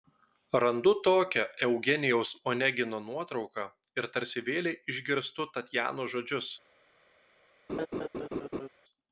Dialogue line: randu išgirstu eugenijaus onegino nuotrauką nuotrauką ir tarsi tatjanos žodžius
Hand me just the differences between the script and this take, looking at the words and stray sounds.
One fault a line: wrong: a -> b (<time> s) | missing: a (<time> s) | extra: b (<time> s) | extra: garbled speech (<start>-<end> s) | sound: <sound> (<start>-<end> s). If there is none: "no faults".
wrong: išgirstu -> tokią (1.1 s)
missing: nuotrauką (3.7 s)
extra: vėlei išgirstu (4.5 s)
sound: laugh (7.7-8.7 s)